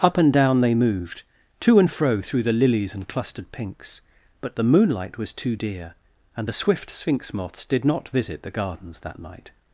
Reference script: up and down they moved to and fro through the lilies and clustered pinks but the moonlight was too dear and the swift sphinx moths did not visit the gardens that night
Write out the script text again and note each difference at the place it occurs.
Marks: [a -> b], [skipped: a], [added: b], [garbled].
up and down they moved to and fro through the lilies and clustered pinks but the moonlight was too dear and the swift sphinx moths did not visit the gardens that night